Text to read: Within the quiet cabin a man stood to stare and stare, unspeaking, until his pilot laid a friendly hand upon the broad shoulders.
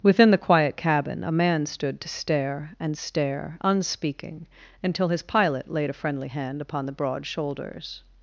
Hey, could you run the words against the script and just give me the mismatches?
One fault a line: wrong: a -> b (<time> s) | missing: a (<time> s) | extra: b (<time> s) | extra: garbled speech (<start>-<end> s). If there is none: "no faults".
no faults